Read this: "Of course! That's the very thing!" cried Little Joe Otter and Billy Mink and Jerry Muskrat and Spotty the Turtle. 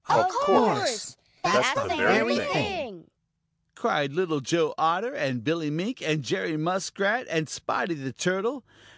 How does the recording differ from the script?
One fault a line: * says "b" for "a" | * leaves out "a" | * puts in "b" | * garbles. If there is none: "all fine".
all fine